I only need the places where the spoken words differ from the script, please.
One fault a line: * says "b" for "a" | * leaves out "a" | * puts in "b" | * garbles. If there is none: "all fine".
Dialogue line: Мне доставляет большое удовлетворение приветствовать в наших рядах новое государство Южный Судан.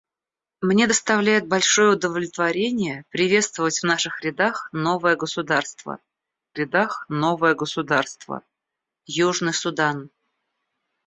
* puts in "рядах новое государство"